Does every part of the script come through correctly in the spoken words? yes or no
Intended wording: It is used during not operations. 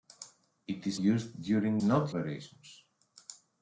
yes